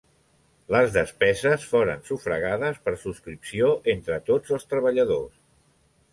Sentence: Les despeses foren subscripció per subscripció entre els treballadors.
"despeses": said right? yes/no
yes